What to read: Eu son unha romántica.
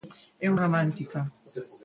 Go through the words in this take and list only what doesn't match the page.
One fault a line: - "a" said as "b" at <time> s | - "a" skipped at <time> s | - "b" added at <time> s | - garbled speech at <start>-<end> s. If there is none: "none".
- "son unha" skipped at 0.6 s